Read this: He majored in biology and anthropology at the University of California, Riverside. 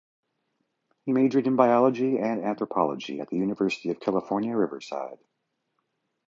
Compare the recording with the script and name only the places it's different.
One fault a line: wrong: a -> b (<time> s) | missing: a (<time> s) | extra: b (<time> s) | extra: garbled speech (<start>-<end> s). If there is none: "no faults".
no faults